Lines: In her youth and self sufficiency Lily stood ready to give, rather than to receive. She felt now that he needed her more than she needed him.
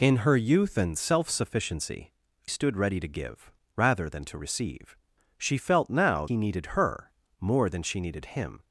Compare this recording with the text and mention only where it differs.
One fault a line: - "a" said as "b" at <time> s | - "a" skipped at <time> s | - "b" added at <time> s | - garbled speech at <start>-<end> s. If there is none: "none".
- "Lily" skipped at 2.1 s
- "that" skipped at 6.3 s